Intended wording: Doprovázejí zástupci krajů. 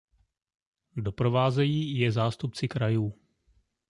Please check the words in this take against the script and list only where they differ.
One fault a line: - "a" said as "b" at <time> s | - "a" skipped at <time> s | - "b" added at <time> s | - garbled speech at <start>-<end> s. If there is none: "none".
- "je" added at 2.0 s